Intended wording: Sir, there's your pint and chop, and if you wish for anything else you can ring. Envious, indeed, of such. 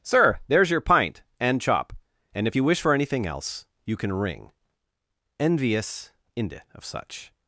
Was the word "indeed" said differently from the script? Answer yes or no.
yes